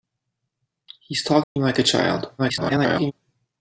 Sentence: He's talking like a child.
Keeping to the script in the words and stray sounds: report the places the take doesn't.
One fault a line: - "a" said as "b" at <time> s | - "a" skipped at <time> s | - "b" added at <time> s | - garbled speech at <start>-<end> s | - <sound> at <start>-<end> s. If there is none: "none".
- dropout at 1.4-1.6 s
- garbled speech at 2.4-3.1 s